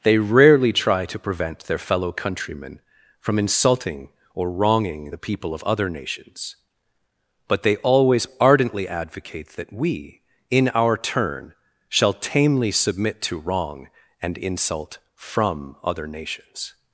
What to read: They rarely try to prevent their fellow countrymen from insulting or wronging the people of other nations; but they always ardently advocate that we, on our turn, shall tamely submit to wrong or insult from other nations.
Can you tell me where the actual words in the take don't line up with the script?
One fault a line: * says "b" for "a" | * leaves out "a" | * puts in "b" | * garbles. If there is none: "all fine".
* says "in" for "on"
* says "and" for "or"